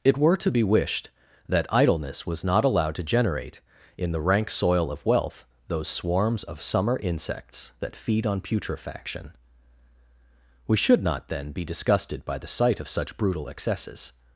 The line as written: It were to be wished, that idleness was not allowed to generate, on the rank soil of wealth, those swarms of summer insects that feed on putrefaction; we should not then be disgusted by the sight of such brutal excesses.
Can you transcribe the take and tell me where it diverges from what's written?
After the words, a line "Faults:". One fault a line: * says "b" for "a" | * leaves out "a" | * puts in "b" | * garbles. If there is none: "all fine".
It were to be wished, that idleness was not allowed to generate, in the rank soil of wealth, those swarms of summer insects that feed on putrefaction; we should not then be disgusted by the sight of such brutal excesses.
Faults:
* says "in" for "on"